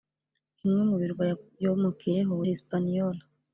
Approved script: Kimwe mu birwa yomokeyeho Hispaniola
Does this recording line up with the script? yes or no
yes